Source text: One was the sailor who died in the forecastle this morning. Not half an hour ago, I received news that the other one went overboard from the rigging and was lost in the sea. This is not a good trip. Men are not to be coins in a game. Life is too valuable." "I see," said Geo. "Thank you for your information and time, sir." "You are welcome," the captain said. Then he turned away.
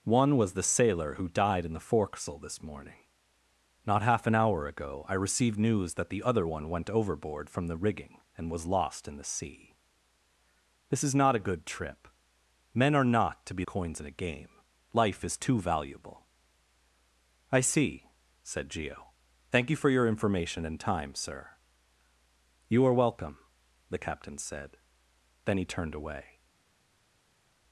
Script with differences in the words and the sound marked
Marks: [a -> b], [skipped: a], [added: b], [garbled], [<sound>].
One was the sailor who died in the forecastle this morning. Not half an hour ago, I received news that the other one went overboard from the rigging and was lost in the sea. This is not a good trip. Men are not to be coins in a game. Life is too valuable." "I see," said Geo. "Thank you for your information and time, sir." "You are welcome," the captain said. Then he turned away.